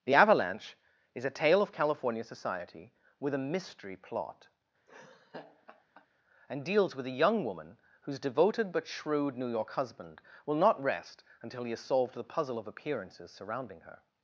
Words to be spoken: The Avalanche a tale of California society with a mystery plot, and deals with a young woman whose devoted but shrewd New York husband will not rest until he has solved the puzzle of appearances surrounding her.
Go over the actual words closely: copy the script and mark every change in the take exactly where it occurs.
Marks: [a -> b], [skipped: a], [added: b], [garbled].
The Avalanche [added: is] a tale of California society with a mystery plot, and deals with a young woman whose devoted but shrewd New York husband will not rest until he has solved the puzzle of appearances surrounding her.